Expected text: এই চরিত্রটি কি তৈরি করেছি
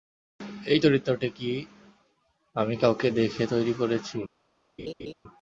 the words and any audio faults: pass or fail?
fail